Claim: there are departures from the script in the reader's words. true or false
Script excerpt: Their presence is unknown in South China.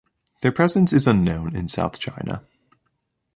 false